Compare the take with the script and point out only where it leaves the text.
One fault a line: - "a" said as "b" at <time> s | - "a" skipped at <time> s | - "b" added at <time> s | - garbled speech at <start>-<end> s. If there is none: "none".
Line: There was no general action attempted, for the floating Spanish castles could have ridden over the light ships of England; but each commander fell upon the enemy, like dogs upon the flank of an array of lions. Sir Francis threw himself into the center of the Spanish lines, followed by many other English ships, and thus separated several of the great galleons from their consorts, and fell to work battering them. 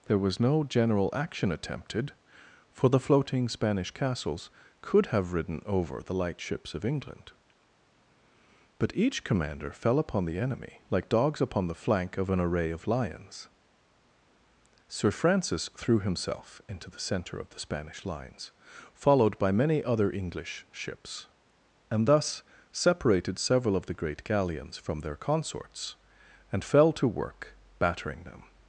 none